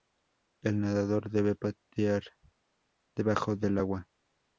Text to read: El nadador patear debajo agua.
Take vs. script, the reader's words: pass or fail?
fail